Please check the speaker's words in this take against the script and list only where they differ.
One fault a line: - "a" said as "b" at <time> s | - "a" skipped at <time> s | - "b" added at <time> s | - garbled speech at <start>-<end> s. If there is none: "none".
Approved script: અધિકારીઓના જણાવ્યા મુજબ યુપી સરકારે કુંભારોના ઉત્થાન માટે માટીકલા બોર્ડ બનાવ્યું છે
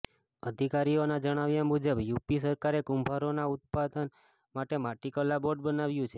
none